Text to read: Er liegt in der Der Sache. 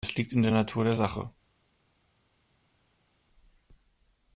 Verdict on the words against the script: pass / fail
fail